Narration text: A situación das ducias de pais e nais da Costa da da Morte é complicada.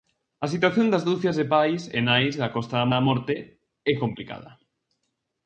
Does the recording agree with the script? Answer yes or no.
yes